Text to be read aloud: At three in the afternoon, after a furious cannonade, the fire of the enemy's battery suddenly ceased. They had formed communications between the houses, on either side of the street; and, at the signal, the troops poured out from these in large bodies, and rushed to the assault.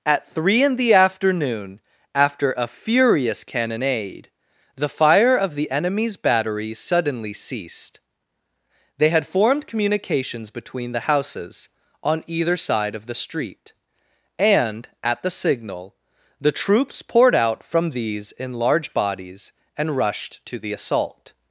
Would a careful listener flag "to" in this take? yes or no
no